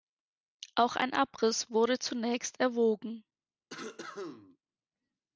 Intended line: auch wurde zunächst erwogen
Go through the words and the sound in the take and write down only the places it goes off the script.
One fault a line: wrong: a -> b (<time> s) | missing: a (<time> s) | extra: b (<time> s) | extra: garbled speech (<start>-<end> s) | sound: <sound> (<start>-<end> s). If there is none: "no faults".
extra: ein abriss (0.9 s)
sound: cough (3.7-4.6 s)